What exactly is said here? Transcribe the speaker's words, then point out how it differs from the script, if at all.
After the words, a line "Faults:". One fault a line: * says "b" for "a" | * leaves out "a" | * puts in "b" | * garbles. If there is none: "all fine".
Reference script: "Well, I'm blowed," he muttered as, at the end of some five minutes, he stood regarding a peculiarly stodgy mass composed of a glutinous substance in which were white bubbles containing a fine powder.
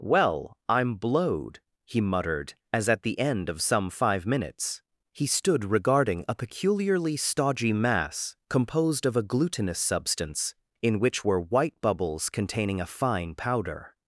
"Well, I'm blowed," he muttered as, at the end of some five minutes, he stood regarding a peculiarly stodgy mass composed of a glutinous substance in which were white bubbles containing a fine powder.
Faults:
all fine